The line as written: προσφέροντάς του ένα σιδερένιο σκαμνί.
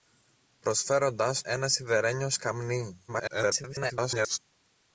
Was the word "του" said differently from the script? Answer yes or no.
yes